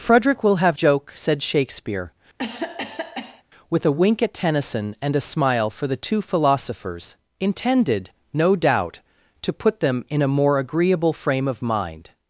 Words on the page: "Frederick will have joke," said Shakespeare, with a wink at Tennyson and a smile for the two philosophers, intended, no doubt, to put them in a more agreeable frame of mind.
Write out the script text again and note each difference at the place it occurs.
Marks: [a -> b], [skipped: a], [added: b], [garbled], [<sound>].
"Frederick will have joke," said Shakespeare, [cough] with a wink at Tennyson and a smile for the two philosophers, intended, no doubt, to put them in a more agreeable frame of mind.